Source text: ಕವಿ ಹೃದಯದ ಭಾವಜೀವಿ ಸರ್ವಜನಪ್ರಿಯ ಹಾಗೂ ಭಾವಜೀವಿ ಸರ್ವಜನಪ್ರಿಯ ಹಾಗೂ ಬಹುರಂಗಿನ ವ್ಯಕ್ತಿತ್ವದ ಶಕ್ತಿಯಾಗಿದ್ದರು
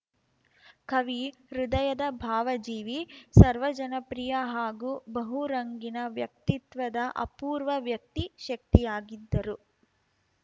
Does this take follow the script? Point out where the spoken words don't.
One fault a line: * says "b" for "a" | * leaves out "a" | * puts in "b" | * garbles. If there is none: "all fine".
* says "ಬಹುರಂಗಿನ ವ್ಯಕ್ತಿತ್ವದ ಅಪೂರ್ವ ವ್ಯಕ್ತಿ" for "ಭಾವಜೀವಿ ಸರ್ವಜನಪ್ರಿಯ ಹಾಗೂ ಬಹುರಂಗಿನ ವ್ಯಕ್ತಿತ್ವದ"